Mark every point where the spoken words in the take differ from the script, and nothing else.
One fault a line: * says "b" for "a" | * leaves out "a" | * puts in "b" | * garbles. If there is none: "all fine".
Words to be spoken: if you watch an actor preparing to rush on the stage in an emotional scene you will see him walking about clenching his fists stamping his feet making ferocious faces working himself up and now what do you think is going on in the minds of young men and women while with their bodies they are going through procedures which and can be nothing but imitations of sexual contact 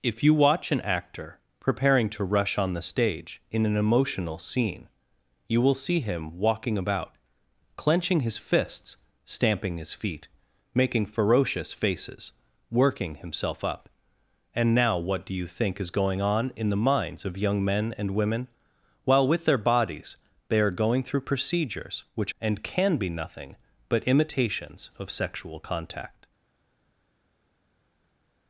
all fine